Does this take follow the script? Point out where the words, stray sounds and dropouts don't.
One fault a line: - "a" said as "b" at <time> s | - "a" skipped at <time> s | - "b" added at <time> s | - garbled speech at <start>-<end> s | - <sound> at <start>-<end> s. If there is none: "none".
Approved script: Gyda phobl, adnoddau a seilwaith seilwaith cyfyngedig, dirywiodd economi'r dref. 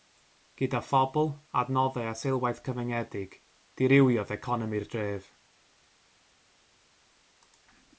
- "seilwaith" skipped at 2.6 s